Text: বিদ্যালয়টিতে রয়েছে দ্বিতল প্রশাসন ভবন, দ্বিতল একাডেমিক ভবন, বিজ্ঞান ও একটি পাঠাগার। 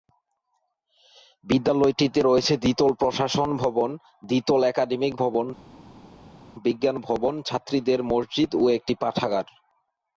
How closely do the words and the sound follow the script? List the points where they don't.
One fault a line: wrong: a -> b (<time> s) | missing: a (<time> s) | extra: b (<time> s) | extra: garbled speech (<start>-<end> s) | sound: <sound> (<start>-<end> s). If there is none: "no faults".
extra: ভবন ছাত্রীদের মসজিদ (7.1 s)